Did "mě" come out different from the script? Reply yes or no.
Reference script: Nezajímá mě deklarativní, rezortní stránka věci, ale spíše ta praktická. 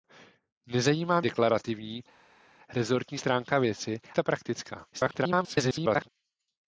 yes